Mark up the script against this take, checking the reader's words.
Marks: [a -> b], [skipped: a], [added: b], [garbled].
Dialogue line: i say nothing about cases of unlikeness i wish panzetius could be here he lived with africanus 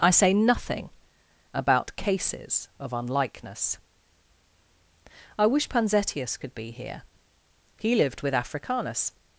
i say nothing about cases of unlikeness i wish panzetius could be here he lived with africanus